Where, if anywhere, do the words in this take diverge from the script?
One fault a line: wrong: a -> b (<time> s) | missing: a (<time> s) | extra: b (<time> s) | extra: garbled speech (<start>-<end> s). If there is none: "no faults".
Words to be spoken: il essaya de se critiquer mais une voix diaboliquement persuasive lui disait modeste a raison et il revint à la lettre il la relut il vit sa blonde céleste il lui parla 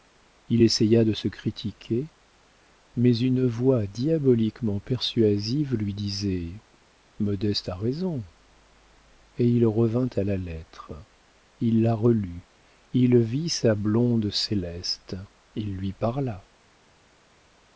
no faults